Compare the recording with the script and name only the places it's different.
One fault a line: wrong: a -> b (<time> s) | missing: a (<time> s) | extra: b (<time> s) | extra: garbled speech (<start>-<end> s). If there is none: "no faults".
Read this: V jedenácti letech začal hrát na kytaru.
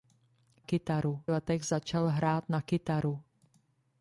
wrong: jedenácti -> kytaru (0.6 s)